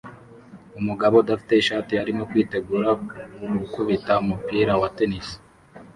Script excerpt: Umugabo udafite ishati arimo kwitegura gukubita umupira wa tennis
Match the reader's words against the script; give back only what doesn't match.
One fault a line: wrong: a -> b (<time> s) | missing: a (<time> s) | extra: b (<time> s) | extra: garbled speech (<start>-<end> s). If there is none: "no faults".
no faults